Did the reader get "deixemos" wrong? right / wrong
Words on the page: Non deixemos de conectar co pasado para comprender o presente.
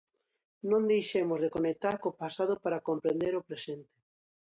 right